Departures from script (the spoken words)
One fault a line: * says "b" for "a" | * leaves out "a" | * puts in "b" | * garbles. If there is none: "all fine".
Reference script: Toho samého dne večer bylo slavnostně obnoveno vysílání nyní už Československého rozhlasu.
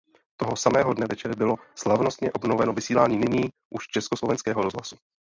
all fine